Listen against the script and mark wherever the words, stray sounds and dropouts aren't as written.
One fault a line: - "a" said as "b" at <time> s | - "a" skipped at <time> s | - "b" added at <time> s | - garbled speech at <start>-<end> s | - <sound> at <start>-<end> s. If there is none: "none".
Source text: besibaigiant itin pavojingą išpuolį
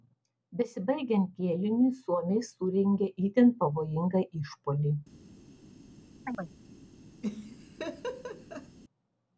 - "kėliniui suomiai surengė" added at 1.4 s
- chirp at 6.2-6.5 s
- laugh at 7.2-8.8 s